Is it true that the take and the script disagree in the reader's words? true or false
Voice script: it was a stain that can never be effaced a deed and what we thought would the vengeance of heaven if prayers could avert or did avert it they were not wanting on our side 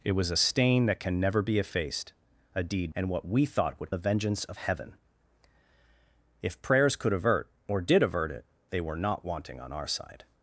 false